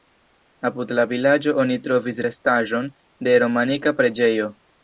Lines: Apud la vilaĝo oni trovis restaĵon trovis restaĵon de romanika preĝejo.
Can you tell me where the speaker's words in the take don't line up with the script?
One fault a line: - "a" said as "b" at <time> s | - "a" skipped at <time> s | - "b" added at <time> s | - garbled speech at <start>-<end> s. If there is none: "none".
- "trovis restaĵon" skipped at 2.9 s